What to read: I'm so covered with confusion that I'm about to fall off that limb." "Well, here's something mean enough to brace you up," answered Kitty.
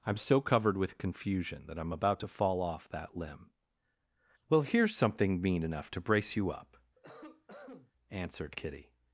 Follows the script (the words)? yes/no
yes